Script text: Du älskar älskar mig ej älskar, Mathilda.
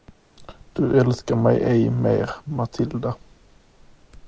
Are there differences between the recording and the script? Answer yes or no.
yes